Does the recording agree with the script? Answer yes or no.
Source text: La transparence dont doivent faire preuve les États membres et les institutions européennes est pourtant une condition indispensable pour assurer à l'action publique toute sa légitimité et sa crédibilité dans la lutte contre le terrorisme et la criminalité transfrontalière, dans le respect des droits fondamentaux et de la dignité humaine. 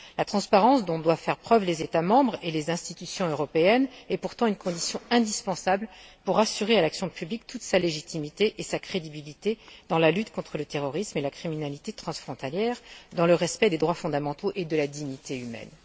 yes